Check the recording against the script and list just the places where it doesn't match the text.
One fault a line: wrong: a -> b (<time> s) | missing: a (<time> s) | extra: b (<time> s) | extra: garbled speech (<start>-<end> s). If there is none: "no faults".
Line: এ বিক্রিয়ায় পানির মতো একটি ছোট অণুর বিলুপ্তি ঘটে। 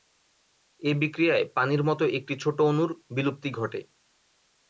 no faults